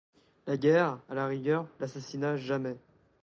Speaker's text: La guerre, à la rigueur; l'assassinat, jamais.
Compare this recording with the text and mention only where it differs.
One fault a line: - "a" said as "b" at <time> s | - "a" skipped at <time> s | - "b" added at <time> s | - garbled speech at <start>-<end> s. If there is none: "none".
none